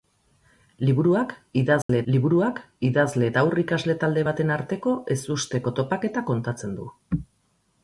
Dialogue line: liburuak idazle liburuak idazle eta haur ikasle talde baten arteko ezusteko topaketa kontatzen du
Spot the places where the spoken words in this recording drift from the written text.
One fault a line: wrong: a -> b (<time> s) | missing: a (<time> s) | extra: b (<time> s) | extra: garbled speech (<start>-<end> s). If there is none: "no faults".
no faults